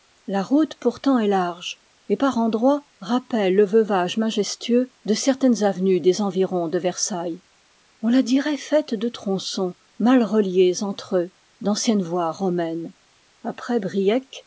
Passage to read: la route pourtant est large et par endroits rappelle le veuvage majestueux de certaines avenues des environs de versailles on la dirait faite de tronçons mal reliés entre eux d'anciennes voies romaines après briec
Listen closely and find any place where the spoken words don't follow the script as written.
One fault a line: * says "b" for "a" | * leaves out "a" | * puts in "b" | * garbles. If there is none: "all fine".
all fine